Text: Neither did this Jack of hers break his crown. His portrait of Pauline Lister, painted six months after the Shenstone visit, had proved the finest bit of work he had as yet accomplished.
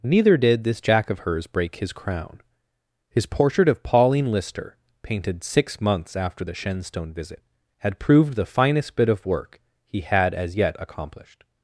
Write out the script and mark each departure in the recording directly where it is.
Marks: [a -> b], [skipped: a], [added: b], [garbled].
Neither did this Jack of hers break his crown. His portrait of Pauline Lister, painted six months after the Shenstone visit, had proved the finest bit of work he had as yet accomplished.